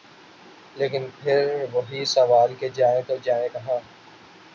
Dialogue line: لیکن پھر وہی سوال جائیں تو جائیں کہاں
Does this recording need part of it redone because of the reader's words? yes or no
yes